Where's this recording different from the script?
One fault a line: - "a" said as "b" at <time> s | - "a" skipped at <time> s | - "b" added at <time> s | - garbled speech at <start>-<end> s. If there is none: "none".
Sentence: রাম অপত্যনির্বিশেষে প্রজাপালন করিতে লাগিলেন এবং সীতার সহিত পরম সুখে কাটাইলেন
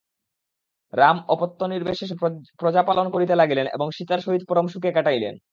none